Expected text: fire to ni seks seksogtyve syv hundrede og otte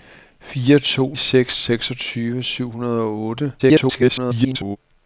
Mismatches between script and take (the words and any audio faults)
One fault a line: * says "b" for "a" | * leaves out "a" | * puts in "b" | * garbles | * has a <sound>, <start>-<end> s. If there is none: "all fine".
* leaves out "ni"
* garbles